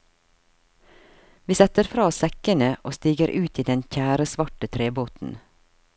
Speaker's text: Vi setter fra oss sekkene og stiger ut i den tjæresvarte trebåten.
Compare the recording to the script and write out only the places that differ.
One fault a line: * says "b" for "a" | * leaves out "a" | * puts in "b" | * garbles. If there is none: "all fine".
all fine